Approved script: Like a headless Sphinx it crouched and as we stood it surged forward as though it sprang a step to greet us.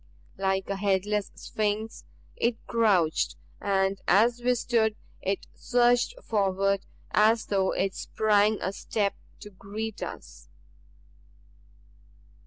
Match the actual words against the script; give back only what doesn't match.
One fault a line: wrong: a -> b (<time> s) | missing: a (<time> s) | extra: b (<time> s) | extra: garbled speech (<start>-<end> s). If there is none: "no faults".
no faults